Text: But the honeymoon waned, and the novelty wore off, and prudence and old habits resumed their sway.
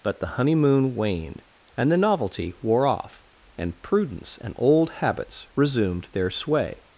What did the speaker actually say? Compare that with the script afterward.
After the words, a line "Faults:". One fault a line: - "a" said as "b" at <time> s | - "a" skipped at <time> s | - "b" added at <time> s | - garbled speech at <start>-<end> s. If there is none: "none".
But the honeymoon waned, and the novelty wore off, and prudence and old habits resumed their sway.
Faults:
none